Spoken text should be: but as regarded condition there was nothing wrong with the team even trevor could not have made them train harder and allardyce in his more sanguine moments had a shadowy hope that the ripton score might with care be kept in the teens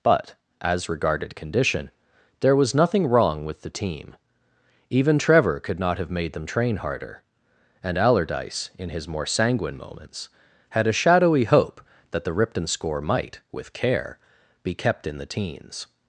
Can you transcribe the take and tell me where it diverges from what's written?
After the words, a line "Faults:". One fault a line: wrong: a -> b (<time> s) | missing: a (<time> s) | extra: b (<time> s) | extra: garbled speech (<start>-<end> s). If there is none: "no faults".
but as regarded condition there was nothing wrong with the team even trevor could not have made them train harder and allardyce in his more sanguine moments had a shadowy hope that the ripton score might with care be kept in the teens
Faults:
no faults